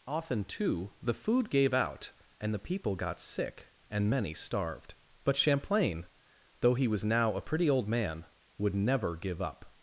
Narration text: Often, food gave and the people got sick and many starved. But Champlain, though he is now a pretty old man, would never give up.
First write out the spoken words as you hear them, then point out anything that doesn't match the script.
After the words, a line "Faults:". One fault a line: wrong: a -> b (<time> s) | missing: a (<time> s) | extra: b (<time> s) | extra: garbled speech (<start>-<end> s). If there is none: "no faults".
Often, too, the food gave out and the people got sick and many starved. But Champlain, though he was now a pretty old man, would never give up.
Faults:
extra: too the (0.5 s)
extra: out (1.7 s)
wrong: is -> was (6.9 s)